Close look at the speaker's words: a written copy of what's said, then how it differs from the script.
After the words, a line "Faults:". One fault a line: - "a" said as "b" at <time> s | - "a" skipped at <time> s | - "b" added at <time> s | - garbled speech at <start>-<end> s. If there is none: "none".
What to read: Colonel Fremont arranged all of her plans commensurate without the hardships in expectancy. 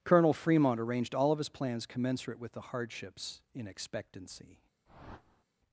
Colonel Fremont arranged all of his plans commensurate with the hardships in expectancy.
Faults:
- "her" said as "his" at 1.4 s
- "without" said as "with" at 2.4 s